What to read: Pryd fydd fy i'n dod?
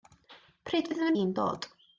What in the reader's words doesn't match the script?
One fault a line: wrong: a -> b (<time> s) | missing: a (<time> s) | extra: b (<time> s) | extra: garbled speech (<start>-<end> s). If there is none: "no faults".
no faults